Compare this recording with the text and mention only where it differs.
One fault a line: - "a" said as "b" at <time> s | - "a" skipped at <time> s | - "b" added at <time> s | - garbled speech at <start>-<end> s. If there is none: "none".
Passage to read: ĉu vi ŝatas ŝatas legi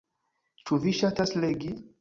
- "ŝatas" skipped at 1.4 s